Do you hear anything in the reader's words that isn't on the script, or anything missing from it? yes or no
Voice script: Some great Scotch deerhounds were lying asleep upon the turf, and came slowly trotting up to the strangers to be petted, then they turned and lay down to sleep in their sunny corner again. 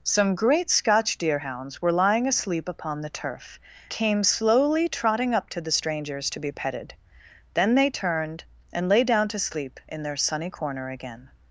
yes